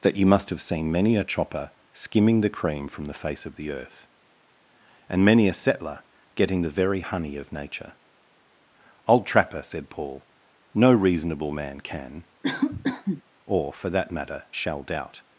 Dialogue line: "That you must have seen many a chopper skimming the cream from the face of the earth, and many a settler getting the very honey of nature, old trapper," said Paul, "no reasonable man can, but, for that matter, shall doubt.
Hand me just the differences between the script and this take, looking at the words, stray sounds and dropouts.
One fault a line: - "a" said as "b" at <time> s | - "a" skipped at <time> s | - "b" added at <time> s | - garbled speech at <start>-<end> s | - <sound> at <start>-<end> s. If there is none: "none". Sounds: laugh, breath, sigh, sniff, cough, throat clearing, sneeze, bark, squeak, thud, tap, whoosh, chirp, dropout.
- cough at 12.4-13.2 s
- "but" said as "or" at 13.4 s